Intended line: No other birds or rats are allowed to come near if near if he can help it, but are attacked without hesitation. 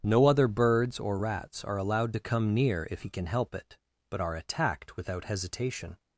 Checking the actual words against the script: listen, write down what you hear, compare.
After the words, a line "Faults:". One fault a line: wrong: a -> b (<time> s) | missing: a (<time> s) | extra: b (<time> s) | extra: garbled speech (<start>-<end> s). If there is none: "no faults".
No other birds or rats are allowed to come near if he can help it, but are attacked without hesitation.
Faults:
missing: near if (3.0 s)